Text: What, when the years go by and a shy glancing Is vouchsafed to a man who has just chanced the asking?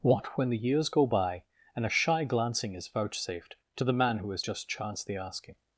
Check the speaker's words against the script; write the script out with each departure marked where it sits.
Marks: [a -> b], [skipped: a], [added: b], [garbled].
What, when the years go by and a shy glancing Is vouchsafed to [a -> the] man who has just chanced the asking?